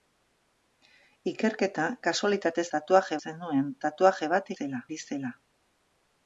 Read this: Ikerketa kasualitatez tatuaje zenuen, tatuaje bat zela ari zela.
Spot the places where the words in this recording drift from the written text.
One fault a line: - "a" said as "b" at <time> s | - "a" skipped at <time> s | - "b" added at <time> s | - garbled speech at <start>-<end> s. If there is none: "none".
none